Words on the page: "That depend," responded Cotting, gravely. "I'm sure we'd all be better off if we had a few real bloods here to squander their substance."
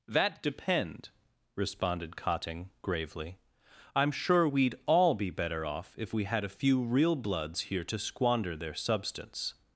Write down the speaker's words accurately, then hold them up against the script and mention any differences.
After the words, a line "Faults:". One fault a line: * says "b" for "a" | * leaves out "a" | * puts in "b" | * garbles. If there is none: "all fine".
"That depend," responded Cotting, gravely. "I'm sure we'd all be better off if we had a few real bloods here to squander their substance."
Faults:
all fine